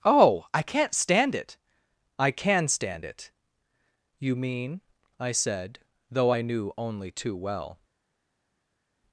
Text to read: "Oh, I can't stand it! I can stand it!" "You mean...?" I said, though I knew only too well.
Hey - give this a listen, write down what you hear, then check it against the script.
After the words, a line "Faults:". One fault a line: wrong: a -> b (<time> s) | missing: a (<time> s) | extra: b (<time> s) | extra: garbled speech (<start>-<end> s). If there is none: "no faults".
"Oh, I can't stand it! I can stand it!" "You mean...?" I said, though I knew only too well.
Faults:
no faults